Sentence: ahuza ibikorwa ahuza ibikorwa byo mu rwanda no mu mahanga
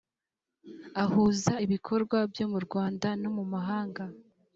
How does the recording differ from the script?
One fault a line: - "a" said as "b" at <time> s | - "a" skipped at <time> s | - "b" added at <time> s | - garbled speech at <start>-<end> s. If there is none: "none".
- "ahuza ibikorwa" skipped at 2.2 s